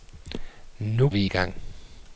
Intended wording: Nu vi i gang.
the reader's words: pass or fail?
pass